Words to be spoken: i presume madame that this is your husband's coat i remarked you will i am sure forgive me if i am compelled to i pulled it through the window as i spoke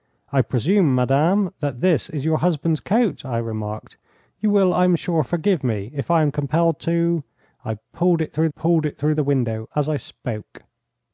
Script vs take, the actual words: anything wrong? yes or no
yes